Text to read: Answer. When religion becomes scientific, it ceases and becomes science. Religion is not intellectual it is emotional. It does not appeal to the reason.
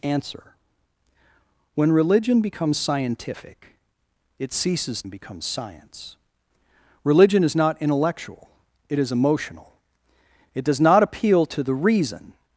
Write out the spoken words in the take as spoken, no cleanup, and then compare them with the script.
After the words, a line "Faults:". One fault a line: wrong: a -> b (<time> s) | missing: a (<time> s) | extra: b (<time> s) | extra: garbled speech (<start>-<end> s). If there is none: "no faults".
Answer. When religion becomes scientific, it ceases and becomes science. Religion is not intellectual it is emotional. It does not appeal to the reason.
Faults:
no faults